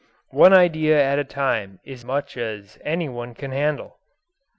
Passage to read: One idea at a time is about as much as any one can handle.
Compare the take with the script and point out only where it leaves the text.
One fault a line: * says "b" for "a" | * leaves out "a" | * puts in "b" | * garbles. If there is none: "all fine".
* leaves out "about as"